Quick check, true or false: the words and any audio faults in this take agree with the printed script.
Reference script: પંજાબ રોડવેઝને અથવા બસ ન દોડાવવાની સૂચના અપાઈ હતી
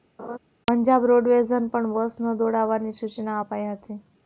false